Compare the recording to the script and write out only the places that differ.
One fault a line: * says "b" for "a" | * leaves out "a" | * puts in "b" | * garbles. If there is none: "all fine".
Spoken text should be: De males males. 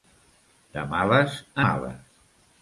all fine